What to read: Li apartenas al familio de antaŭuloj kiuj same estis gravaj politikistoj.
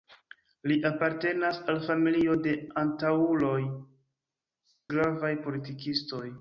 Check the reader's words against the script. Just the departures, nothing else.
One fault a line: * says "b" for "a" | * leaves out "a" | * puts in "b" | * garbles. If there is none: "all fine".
* leaves out "kiuj same estis"